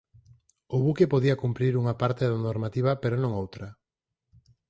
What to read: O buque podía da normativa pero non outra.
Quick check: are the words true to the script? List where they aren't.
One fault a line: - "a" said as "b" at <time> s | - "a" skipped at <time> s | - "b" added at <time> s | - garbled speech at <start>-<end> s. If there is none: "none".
- "cumprir unha parte" added at 1.4 s